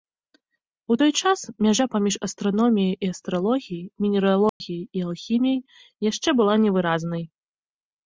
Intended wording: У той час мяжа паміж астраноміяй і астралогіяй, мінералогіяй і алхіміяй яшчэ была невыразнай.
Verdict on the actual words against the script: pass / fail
pass